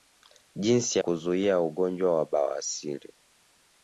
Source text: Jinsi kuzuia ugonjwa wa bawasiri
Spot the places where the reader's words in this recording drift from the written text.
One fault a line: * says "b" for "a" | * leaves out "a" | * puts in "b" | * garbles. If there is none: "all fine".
all fine